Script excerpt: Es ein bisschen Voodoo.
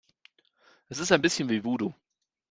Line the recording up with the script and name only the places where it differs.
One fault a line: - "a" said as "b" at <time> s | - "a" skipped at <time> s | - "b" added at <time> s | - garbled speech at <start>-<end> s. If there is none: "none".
- "ist" added at 1.0 s
- "wie" added at 1.5 s